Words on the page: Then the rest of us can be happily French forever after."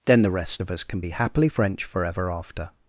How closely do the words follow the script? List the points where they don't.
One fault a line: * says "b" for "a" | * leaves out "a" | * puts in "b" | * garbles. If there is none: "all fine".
all fine